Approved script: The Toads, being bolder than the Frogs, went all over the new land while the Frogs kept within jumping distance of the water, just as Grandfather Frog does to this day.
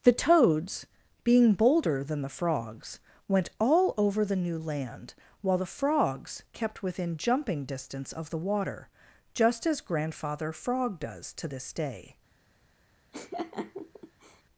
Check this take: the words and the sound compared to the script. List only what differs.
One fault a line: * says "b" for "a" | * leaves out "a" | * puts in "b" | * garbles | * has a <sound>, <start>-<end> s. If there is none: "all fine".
* has a laugh, 13.1-14.4 s